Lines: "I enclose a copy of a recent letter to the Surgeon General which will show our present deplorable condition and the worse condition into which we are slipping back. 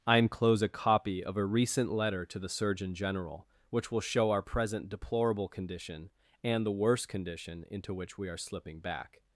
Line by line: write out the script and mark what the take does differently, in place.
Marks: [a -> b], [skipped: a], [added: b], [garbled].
"I enclose a copy of a recent letter to the Surgeon General which will show our present deplorable condition and the worse condition into which we are slipping back.